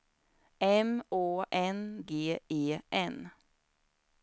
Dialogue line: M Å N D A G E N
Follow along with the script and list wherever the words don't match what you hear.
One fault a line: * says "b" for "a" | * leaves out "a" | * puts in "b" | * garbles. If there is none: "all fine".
* leaves out "D A"